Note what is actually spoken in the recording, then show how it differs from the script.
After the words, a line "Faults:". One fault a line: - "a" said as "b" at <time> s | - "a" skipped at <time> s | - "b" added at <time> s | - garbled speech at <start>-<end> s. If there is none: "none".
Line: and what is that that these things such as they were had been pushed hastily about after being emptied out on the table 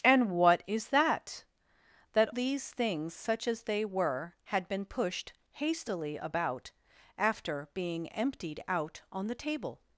and what is that that these things such as they were had been pushed hastily about after being emptied out on the table
Faults:
none